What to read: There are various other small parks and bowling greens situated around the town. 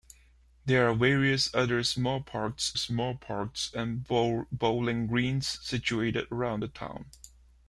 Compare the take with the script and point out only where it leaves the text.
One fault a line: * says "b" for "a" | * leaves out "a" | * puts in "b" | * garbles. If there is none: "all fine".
* puts in "small parks"